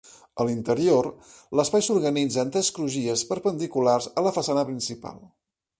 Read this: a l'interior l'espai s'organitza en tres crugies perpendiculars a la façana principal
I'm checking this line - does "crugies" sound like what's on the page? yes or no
yes